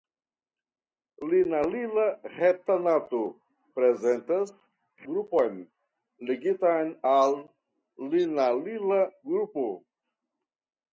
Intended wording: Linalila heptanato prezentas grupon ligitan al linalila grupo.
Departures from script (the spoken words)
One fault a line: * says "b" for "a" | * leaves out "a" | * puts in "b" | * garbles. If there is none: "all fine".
all fine